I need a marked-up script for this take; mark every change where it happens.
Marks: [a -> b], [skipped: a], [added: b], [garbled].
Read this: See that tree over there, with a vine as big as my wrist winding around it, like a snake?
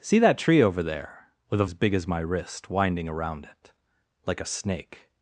See that tree over there, with a [skipped: vine] as big as my wrist winding around it, like a snake?